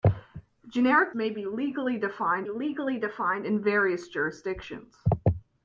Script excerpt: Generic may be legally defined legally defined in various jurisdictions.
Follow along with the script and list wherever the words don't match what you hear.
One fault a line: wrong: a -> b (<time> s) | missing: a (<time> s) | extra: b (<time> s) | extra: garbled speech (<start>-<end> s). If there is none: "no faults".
no faults